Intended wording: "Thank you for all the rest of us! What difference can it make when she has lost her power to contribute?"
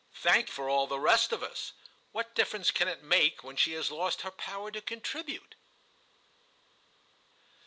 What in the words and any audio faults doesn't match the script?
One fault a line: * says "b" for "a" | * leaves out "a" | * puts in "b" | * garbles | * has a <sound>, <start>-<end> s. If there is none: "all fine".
* leaves out "you"